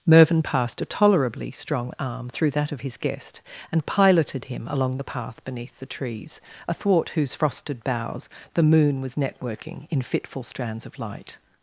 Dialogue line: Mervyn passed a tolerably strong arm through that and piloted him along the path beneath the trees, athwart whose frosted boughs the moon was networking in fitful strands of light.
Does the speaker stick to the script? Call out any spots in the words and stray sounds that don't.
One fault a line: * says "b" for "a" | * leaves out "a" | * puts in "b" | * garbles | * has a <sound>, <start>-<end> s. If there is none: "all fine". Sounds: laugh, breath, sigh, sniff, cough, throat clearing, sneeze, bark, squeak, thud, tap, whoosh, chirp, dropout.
* puts in "of his guest"